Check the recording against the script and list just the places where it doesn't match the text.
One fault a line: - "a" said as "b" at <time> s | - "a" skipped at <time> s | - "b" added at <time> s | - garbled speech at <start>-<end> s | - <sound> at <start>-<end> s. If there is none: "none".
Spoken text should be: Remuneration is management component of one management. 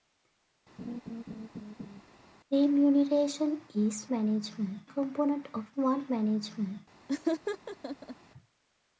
- laugh at 0.8-2.0 s
- laugh at 7.1-8.2 s